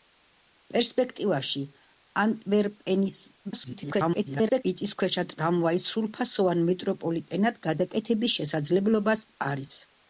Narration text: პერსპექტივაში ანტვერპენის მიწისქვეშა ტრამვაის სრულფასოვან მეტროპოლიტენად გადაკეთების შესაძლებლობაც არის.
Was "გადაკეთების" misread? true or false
false